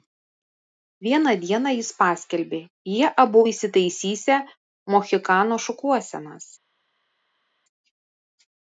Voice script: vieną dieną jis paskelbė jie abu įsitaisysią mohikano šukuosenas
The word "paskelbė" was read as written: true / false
true